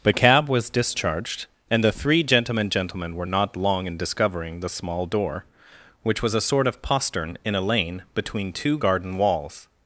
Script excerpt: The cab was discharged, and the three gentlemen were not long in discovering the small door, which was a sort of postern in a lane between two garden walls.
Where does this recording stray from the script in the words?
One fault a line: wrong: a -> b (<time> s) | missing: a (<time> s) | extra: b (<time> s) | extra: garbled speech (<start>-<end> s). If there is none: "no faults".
extra: gentlemen (2.7 s)